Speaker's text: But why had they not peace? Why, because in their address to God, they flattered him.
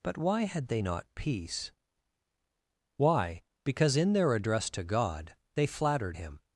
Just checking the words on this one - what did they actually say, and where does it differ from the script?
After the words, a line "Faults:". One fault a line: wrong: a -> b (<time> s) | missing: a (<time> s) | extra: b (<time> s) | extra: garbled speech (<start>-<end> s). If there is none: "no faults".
But why had they not peace? Why, because in their address to God, they flattered him.
Faults:
no faults